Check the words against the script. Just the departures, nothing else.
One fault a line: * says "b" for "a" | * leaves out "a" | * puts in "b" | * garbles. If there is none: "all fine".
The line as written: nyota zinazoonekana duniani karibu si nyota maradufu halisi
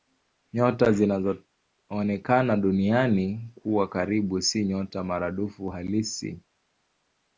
* puts in "kuwa"